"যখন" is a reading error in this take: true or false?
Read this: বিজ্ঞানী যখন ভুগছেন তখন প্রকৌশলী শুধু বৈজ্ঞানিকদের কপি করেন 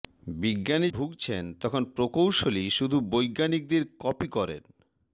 true